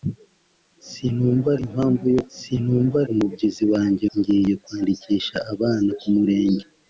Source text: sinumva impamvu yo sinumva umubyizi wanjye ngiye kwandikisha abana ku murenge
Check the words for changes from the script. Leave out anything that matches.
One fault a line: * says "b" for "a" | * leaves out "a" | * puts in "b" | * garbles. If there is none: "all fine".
all fine